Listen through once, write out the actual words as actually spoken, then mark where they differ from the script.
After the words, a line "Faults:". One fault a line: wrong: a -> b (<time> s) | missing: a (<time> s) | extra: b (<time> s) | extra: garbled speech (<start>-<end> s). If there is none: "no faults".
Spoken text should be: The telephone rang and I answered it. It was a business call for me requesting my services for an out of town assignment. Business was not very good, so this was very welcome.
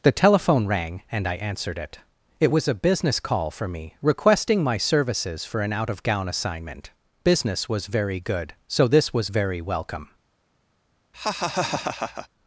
The telephone rang and I answered it. It was a business call for me requesting my services for an out of gown assignment. Business was very good, so this was very welcome.
Faults:
wrong: town -> gown (6.0 s)
missing: not (7.9 s)